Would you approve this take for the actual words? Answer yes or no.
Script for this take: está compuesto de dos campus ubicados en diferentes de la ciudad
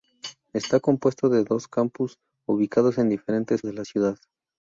yes